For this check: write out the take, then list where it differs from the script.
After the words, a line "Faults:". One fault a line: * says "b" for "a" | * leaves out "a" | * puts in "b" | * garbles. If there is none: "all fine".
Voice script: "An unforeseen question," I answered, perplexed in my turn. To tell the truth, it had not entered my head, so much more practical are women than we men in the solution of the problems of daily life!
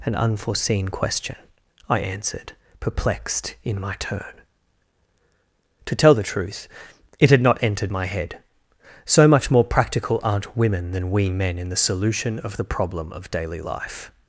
"An unforeseen question," I answered, perplexed in my turn. To tell the truth, it had not entered my head, so much more practical aren't women than we men in the solution of the problem of daily life!
Faults:
* says "aren't" for "are"
* says "problem" for "problems"